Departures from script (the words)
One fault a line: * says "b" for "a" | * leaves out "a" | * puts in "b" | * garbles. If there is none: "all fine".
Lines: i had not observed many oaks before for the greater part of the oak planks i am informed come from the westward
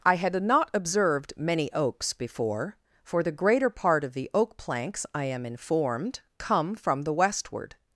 all fine